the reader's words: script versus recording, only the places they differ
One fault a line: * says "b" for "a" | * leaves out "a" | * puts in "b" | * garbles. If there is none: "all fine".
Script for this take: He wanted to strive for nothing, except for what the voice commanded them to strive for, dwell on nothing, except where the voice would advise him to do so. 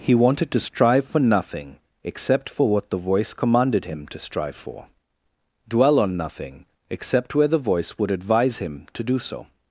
* says "him" for "them"